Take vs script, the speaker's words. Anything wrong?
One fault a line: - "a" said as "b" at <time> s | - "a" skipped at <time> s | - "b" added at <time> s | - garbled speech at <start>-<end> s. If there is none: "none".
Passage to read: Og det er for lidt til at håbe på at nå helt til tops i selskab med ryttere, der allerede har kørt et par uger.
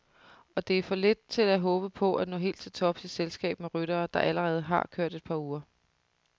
none